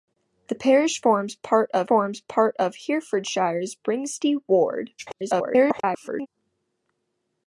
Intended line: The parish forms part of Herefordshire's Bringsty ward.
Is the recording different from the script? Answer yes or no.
yes